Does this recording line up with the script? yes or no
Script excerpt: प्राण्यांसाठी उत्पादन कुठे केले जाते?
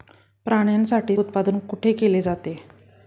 yes